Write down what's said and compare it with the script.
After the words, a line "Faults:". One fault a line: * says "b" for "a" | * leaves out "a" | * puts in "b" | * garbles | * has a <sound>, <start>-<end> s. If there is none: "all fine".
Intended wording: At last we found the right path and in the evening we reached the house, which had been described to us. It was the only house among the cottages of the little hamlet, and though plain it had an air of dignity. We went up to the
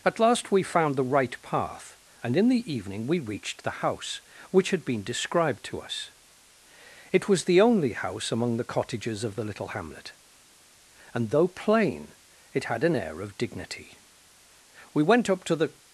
At last we found the right path and in the evening we reached the house, which had been described to us. It was the only house among the cottages of the little hamlet, and though plain it had an air of dignity. We went up to the
Faults:
all fine